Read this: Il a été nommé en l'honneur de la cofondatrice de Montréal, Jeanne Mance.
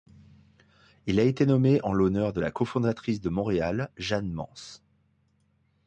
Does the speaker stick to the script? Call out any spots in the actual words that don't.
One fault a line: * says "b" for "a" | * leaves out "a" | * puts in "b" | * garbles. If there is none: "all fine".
all fine